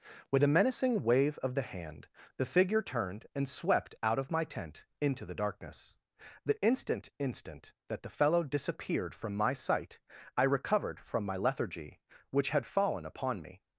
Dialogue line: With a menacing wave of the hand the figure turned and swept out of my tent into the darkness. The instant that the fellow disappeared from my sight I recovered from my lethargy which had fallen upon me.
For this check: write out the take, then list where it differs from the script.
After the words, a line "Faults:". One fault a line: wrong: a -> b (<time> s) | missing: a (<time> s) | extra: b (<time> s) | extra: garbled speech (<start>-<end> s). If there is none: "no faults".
With a menacing wave of the hand the figure turned and swept out of my tent into the darkness. The instant instant that the fellow disappeared from my sight I recovered from my lethargy which had fallen upon me.
Faults:
extra: instant (7.2 s)